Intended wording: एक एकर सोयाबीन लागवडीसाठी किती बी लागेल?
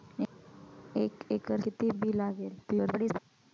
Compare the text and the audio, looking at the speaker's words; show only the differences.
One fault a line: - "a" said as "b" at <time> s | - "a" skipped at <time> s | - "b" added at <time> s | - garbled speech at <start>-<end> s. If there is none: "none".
- "सोयाबीन लागवडीसाठी" skipped at 1.6 s
- garbled speech at 2.6-3.2 s